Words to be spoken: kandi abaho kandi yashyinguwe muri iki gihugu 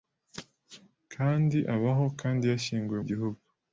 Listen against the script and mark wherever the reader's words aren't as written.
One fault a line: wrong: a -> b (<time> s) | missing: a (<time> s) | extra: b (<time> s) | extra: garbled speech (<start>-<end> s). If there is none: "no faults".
missing: muri iki (3.0 s)